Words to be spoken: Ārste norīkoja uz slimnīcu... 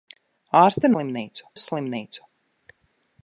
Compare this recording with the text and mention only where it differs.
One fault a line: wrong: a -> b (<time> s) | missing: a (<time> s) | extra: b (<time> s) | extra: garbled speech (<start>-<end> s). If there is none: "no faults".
wrong: norīkoja -> slimnīcu (0.9 s)